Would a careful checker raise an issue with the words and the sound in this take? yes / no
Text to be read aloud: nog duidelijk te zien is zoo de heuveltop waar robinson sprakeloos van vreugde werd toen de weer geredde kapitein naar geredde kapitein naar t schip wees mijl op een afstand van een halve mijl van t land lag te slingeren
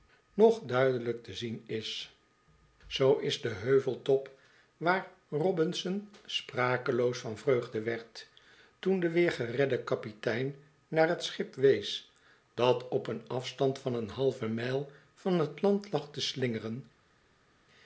yes